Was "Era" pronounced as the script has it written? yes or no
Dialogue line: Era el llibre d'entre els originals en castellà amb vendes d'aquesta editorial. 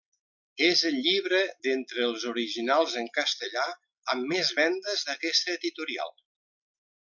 no